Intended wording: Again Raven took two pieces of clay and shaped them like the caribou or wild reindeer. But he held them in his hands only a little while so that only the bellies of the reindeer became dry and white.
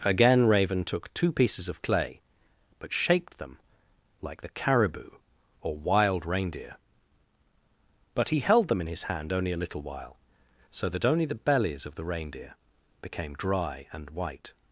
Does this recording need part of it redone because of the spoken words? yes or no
yes